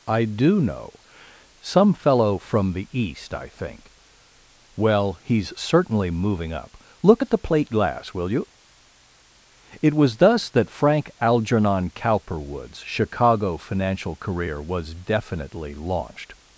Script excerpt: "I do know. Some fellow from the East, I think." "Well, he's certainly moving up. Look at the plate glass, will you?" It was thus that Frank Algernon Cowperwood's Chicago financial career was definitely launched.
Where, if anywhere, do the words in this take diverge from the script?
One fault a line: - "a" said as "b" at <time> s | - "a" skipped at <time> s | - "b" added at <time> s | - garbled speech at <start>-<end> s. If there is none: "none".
none